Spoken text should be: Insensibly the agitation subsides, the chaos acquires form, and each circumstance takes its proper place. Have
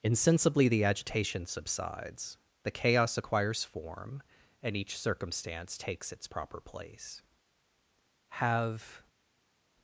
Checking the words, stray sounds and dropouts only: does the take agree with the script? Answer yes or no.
yes